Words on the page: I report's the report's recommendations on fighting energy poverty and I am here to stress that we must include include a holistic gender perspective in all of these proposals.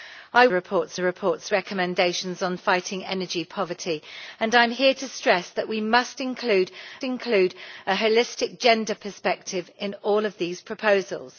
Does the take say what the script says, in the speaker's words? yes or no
yes